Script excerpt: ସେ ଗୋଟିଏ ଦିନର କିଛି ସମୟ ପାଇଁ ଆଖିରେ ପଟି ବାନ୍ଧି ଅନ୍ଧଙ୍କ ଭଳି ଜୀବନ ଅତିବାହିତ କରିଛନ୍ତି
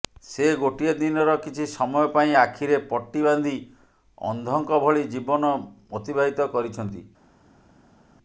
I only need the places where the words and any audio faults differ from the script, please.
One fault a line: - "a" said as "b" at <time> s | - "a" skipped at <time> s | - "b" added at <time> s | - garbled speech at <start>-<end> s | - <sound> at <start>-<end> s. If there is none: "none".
none